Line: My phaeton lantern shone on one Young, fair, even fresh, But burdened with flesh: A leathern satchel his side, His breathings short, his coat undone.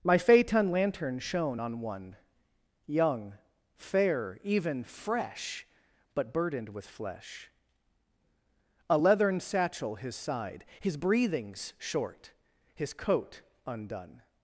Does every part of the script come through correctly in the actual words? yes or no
yes